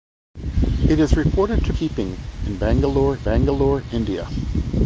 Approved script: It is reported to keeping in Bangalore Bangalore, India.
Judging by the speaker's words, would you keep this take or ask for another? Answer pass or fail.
pass